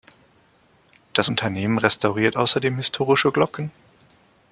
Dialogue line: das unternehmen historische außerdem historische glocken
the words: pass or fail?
fail